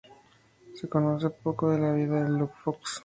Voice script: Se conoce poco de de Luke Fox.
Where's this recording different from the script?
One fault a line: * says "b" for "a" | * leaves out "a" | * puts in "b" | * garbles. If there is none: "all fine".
* puts in "la vida"